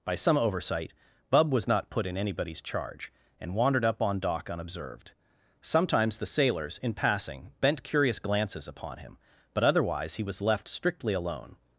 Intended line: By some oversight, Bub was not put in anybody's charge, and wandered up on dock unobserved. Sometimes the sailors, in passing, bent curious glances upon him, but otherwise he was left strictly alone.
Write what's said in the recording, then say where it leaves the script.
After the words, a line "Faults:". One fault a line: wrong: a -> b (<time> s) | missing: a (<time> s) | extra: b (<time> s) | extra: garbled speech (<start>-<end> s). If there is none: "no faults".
By some oversight, Bub was not put in anybody's charge, and wandered up on dock unobserved. Sometimes the sailors, in passing, bent curious glances upon him, but otherwise he was left strictly alone.
Faults:
no faults